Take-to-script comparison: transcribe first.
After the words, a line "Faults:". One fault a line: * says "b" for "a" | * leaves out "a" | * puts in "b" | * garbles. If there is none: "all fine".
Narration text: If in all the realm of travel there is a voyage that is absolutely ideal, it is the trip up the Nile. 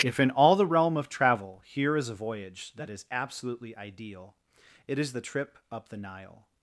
If in all the realm of travel here is a voyage that is absolutely ideal, it is the trip up the Nile.
Faults:
* says "here" for "there"